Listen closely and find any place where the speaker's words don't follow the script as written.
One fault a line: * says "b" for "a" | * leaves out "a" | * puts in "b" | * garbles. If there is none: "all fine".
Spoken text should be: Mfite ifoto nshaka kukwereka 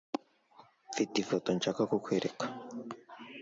all fine